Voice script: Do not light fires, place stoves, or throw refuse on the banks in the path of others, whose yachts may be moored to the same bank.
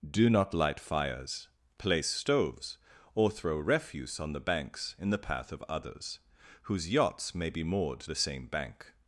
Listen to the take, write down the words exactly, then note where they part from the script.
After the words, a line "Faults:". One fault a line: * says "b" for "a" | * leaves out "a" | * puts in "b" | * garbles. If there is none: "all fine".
Do not light fires, place stoves, or throw refuse on the banks in the path of others, whose yachts may be moored the same bank.
Faults:
* leaves out "to"